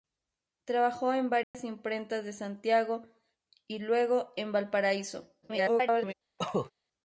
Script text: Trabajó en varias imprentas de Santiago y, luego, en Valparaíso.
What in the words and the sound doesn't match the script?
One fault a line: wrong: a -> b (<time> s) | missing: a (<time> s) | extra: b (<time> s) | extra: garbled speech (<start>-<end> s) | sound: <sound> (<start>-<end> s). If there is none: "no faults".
sound: dropout (1.4-1.5 s)
extra: garbled speech (5.4-6.1 s)
sound: cough (6.4-6.7 s)